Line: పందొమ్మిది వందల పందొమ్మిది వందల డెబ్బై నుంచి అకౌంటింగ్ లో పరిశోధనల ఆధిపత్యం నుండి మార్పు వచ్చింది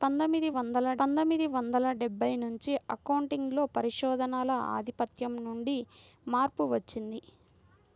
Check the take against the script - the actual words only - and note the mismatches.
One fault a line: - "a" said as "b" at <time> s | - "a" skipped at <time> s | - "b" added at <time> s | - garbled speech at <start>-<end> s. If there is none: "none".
none